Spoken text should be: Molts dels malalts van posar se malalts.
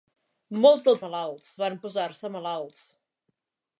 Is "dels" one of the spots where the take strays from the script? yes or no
no